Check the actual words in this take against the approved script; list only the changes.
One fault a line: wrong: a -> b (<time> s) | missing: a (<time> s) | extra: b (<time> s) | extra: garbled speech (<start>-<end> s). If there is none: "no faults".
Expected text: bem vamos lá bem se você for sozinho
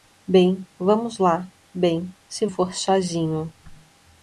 missing: você (2.5 s)